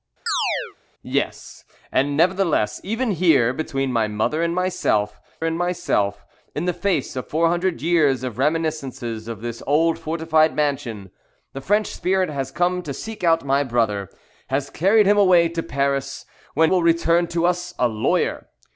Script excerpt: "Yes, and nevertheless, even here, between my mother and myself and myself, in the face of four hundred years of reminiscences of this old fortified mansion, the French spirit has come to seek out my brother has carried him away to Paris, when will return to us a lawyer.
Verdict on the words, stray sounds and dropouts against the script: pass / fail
fail